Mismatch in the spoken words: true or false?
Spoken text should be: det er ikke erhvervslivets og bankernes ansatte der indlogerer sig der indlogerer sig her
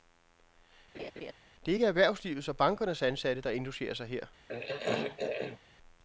true